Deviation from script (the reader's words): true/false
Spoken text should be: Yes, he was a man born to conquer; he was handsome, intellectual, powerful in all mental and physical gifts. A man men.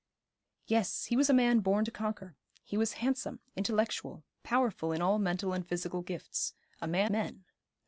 false